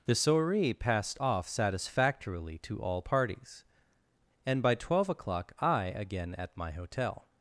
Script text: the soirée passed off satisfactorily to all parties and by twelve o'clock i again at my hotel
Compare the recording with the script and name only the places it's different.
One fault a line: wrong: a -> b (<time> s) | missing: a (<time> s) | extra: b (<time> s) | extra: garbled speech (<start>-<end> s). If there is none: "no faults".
no faults